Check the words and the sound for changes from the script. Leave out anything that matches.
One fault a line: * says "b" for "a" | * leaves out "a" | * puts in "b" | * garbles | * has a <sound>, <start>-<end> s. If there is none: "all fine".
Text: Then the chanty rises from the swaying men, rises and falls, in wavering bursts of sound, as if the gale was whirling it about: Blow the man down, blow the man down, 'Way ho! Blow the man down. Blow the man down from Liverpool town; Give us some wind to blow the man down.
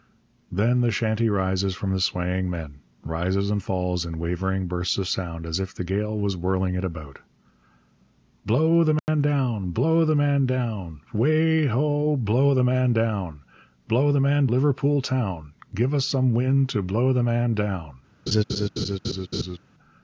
* has a dropout, 9.0-9.1 s
* leaves out "down from"
* has a laugh, 18.3-19.6 s